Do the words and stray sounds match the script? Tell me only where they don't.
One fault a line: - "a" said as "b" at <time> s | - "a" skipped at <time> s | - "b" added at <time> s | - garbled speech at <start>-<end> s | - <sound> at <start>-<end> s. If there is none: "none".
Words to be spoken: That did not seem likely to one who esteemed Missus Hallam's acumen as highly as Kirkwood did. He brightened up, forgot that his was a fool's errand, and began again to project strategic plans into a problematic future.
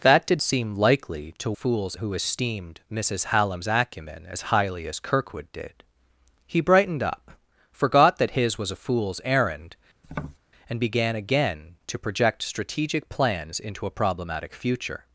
- "not" skipped at 0.4 s
- "one" said as "fool's" at 1.5 s
- tap at 10.0-10.4 s